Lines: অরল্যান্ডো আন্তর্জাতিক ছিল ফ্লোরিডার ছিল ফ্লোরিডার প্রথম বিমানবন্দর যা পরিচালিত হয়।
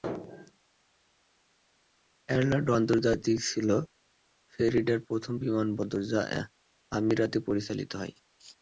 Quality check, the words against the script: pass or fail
fail